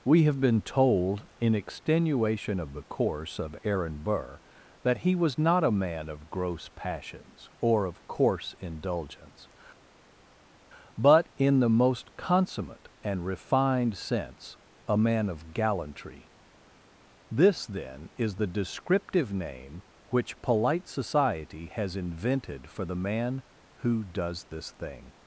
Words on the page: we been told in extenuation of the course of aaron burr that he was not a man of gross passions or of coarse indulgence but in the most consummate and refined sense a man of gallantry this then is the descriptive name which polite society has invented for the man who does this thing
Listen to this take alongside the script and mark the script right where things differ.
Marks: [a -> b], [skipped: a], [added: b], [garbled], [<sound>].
we [added: have] been told in extenuation of the course of aaron burr that he was not a man of gross passions or of coarse indulgence but in the most consummate and refined sense a man of gallantry this then is the descriptive name which polite society has invented for the man who does this thing